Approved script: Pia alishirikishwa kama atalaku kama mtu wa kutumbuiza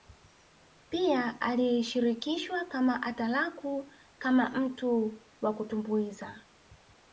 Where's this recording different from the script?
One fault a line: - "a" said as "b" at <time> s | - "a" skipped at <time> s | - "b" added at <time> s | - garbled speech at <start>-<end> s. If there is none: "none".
none